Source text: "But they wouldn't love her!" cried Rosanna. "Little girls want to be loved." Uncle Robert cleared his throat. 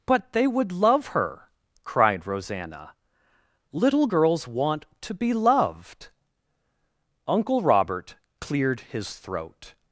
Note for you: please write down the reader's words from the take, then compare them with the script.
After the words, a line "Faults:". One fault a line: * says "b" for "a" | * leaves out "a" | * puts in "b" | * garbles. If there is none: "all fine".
"But they would love her!" cried Rosanna. "Little girls want to be loved." Uncle Robert cleared his throat.
Faults:
* says "would" for "wouldn't"